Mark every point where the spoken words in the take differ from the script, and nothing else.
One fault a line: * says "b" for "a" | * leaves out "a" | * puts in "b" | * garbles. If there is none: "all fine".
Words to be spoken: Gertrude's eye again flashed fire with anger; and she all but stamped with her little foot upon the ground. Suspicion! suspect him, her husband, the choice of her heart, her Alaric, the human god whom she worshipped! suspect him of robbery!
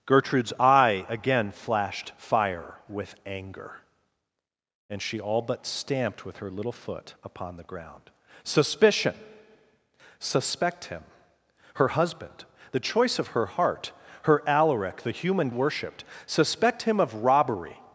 * leaves out "god whom she"